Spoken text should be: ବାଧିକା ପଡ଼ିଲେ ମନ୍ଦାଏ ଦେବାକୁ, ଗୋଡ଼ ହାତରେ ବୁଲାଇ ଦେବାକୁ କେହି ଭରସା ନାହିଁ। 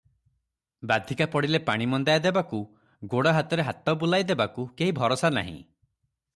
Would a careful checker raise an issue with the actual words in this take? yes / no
yes